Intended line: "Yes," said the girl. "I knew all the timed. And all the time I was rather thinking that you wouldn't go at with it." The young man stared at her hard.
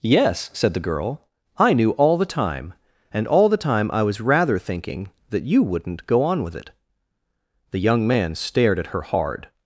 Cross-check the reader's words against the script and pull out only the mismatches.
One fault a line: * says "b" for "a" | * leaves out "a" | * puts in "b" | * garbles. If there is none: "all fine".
* says "time" for "timed"
* says "on" for "at"